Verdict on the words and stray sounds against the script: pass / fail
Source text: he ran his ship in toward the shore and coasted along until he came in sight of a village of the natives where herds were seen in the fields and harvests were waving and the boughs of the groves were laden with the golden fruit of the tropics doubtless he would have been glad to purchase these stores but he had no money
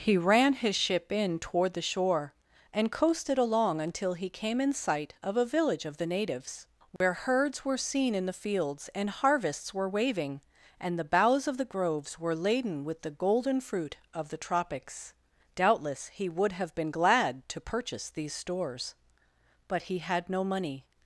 fail